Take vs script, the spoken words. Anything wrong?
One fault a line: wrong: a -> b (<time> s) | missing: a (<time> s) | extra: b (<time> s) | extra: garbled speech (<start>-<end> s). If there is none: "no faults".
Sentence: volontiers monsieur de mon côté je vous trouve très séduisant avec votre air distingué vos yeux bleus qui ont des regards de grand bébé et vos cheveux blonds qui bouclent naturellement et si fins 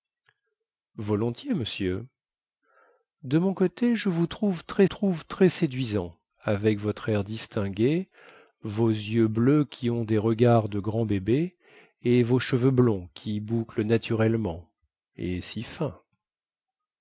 extra: trouve très (4.8 s)